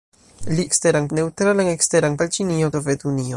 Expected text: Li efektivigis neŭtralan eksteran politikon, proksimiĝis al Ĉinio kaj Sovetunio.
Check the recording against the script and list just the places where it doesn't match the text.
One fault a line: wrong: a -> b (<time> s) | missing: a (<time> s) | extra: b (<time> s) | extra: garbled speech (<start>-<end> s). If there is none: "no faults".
wrong: efektivigis -> eksteran (0.7 s)
missing: politikon proksimiĝis (2.2 s)
missing: kaj (2.7 s)